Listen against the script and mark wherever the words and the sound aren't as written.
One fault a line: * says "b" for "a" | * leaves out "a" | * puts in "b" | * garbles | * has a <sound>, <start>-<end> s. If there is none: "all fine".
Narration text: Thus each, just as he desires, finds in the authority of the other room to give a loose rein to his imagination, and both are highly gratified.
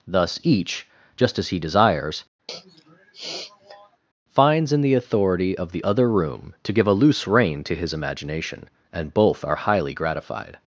* has a sniff, 2.5-4.0 s